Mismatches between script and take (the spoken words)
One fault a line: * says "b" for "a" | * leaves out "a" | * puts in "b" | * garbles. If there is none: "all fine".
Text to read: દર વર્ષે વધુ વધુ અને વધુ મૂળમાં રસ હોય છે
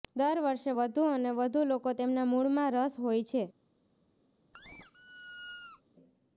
* puts in "અને"
* says "લોકો તેમના" for "અને વધુ"